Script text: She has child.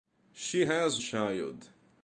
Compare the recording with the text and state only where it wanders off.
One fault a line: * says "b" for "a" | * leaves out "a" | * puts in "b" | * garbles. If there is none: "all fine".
all fine